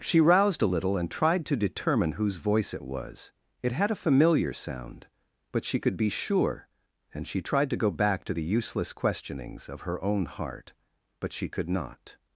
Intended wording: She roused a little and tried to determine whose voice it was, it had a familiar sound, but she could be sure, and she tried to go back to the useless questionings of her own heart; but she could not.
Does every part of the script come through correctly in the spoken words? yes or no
yes